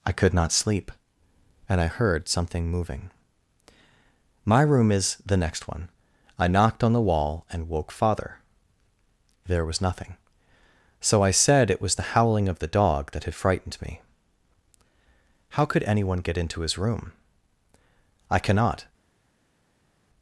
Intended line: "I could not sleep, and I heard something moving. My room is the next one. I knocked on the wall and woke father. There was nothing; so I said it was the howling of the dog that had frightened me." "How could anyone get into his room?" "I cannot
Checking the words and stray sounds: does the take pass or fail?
pass